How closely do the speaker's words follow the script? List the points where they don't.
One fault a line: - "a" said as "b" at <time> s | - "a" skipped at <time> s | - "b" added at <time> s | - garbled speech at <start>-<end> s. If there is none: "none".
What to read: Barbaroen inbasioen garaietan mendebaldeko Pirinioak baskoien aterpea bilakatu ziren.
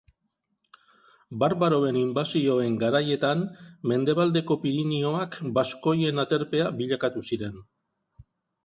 none